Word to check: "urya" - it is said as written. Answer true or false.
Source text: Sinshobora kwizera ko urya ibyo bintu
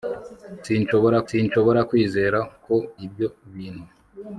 false